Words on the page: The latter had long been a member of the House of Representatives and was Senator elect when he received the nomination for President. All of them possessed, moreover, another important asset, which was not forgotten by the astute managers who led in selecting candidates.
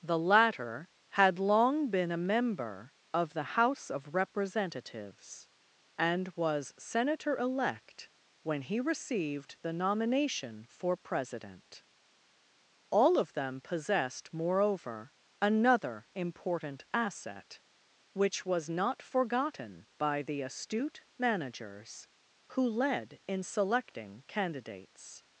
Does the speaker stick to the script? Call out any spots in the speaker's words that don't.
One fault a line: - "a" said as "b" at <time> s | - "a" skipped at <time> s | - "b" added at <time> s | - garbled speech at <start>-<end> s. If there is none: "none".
none